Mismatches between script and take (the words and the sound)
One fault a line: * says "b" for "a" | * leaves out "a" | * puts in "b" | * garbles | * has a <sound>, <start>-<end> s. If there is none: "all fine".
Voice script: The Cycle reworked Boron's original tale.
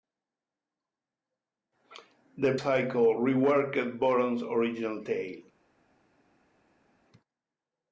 all fine